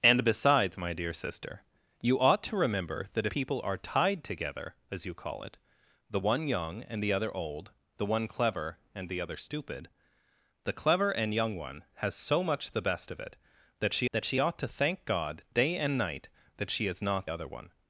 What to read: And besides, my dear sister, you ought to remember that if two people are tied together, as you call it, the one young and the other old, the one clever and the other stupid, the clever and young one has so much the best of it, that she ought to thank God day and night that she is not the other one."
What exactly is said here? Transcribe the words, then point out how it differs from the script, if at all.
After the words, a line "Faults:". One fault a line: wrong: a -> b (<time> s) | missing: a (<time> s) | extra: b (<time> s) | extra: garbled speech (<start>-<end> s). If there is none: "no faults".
And besides, my dear sister, you ought to remember that people are tied together, as you call it, the one young and the other old, the one clever and the other stupid, the clever and young one has so much the best of it, that she that she ought to thank God day and night that she is not other one."
Faults:
missing: if two (3.3 s)
extra: that she (14.1 s)
missing: the (17.3 s)